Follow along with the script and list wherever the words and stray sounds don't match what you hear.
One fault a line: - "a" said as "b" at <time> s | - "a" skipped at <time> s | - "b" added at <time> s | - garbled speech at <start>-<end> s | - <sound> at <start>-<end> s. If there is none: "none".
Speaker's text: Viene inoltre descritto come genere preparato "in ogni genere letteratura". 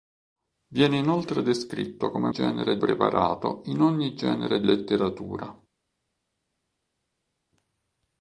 none